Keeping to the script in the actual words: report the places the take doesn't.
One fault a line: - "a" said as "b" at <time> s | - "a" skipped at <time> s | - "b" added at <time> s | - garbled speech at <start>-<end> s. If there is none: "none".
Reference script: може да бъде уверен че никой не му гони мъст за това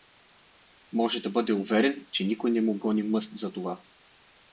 none